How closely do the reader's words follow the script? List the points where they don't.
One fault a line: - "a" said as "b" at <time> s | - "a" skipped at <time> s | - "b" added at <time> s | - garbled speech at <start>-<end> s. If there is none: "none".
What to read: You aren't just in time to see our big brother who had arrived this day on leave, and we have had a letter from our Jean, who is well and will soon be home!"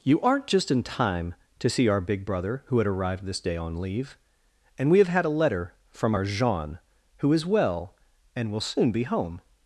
none